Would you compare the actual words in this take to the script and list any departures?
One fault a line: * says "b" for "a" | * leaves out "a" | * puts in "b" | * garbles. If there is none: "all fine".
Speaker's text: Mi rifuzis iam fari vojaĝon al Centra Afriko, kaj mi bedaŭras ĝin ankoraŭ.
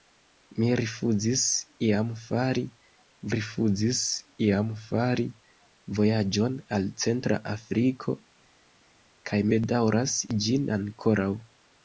* puts in "rifuzis iam fari"
* leaves out "mi"